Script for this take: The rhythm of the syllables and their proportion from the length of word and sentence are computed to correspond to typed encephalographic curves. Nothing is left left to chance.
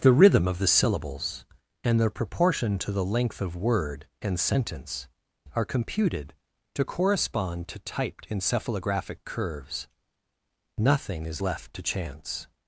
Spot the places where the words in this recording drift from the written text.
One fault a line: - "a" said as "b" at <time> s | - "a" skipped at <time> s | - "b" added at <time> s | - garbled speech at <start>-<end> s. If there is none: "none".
- "from" said as "to" at 2.8 s
- "left" skipped at 11.7 s